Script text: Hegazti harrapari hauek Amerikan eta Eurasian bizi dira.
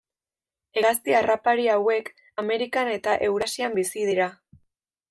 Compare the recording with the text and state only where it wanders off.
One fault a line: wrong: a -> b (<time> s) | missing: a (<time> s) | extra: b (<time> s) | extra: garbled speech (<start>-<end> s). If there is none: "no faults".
no faults